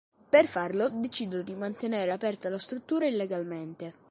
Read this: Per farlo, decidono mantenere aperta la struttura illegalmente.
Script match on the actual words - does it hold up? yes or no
no